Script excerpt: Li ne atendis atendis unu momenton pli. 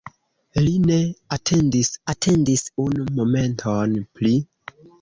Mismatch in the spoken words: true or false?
false